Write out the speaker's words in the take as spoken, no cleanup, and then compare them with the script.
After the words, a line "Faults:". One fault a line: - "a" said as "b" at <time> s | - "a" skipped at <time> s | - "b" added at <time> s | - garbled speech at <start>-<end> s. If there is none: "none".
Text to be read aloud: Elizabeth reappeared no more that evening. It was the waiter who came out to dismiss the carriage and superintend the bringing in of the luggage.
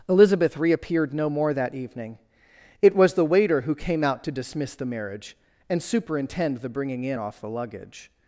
Elizabeth reappeared no more that evening. It was the waiter who came out to dismiss the marriage and superintend the bringing in off the luggage.
Faults:
- "carriage" said as "marriage" at 4.8 s
- "of" said as "off" at 7.2 s